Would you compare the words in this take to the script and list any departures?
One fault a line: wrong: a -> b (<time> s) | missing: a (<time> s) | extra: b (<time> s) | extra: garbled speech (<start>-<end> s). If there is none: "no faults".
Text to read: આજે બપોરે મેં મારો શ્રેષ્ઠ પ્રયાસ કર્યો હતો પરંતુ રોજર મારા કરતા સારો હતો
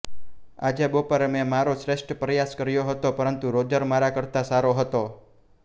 no faults